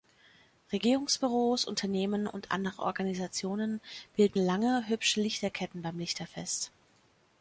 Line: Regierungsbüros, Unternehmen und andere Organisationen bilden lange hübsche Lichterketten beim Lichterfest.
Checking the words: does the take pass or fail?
pass